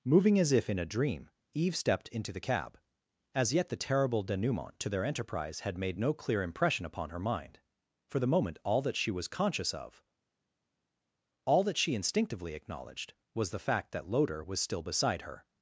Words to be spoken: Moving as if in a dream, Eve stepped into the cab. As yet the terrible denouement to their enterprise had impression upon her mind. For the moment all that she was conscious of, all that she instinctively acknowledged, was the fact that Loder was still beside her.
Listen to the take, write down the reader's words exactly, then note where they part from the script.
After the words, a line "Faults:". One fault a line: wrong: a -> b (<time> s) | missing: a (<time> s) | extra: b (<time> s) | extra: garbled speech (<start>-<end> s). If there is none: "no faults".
Moving as if in a dream, Eve stepped into the cab. As yet the terrible denouement to their enterprise had made no clear impression upon her mind. For the moment all that she was conscious of, all that she instinctively acknowledged, was the fact that Loder was still beside her.
Faults:
extra: made no clear (5.8 s)